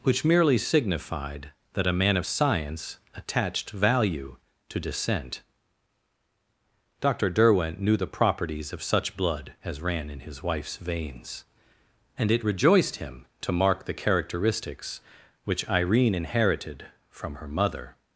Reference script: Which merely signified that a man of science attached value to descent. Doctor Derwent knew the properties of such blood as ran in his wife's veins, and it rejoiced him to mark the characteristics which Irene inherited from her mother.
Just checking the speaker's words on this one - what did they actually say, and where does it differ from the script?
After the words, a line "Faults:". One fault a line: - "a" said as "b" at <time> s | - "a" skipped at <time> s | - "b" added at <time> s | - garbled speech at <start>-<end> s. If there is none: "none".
Which merely signified that a man of science attached value to descent. Doctor Derwent knew the properties of such blood as ran in his wife's veins, and it rejoiced him to mark the characteristics which Irene inherited from her mother.
Faults:
none